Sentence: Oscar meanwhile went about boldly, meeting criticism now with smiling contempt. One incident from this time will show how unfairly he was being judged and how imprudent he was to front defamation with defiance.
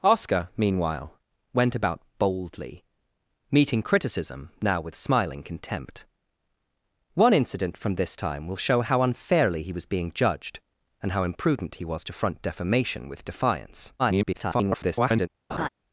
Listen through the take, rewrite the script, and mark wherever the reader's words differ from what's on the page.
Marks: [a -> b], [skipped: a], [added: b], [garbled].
Oscar meanwhile went about boldly, meeting criticism now with smiling contempt. One incident from this time will show how unfairly he was being judged and how imprudent he was to front defamation with defiance. [garbled]